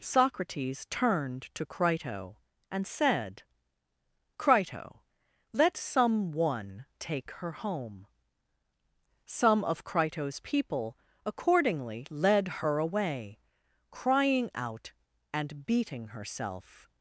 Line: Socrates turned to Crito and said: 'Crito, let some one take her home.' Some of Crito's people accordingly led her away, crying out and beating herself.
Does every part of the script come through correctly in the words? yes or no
yes